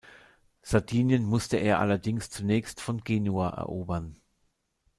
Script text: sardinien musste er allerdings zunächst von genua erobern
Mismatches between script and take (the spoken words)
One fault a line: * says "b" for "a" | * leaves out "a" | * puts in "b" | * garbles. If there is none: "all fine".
all fine